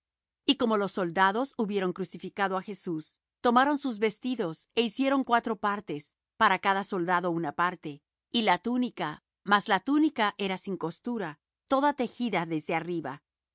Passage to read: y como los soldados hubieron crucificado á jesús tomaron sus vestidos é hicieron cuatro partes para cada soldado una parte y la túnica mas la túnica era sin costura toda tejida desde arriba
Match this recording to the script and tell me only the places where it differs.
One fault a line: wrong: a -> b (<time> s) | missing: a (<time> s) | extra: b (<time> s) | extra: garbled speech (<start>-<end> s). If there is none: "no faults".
no faults